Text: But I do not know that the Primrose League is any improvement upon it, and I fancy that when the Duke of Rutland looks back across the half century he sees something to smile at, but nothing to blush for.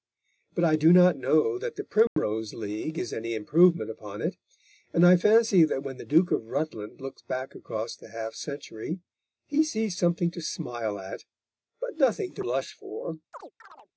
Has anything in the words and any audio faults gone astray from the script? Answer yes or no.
yes